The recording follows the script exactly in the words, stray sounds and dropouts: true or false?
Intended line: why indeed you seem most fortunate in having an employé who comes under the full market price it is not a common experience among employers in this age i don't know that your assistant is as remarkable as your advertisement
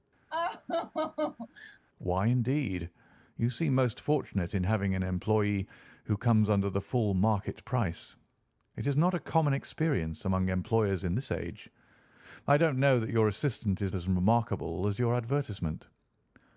false